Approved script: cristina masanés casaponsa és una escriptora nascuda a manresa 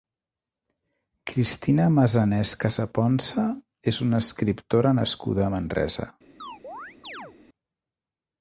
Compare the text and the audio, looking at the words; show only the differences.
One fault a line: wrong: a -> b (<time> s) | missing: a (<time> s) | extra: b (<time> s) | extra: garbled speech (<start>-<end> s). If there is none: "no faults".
no faults